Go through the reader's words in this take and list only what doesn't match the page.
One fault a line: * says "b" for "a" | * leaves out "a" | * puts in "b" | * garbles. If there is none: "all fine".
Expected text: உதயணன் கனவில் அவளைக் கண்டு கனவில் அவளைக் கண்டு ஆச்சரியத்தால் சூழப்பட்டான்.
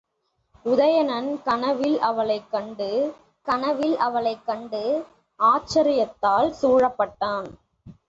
all fine